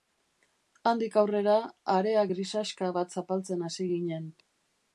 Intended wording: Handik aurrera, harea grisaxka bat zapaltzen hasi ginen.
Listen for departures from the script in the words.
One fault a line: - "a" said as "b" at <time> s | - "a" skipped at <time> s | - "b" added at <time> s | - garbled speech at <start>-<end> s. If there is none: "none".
none